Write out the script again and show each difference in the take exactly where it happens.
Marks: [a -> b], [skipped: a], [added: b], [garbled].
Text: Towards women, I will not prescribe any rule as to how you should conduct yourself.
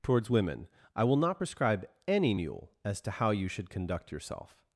Towards women, I will not prescribe any [rule -> mule] as to how you should conduct yourself.